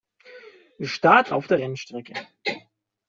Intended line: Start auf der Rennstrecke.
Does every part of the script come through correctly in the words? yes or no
yes